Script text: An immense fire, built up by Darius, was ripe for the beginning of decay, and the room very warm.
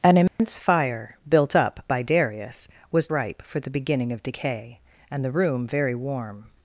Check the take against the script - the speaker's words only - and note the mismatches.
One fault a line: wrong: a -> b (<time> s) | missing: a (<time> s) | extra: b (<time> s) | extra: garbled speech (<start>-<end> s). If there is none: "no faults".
no faults